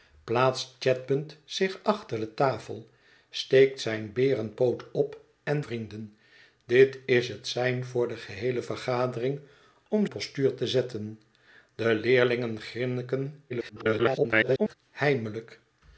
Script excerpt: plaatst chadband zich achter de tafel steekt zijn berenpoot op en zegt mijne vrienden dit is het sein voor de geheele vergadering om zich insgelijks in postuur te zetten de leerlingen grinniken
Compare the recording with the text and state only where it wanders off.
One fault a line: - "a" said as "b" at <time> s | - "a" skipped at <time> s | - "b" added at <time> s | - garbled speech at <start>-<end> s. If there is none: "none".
- "zegt mijne" skipped at 5.6 s
- "zich insgelijks in" skipped at 10.1 s
- garbled speech at 13.5-14.7 s